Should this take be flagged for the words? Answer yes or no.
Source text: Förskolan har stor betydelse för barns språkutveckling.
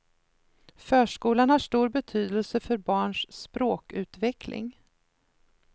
no